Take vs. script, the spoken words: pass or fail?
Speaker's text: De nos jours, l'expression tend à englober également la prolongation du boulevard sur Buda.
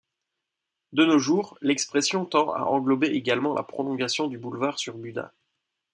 pass